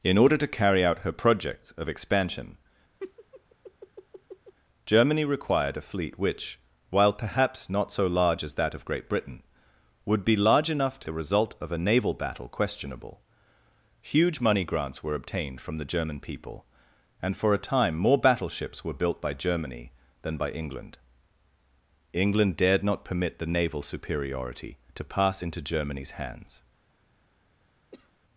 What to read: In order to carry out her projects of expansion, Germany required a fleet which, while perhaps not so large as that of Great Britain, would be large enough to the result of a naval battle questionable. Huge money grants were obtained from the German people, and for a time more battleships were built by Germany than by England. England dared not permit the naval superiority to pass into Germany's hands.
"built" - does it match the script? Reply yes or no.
yes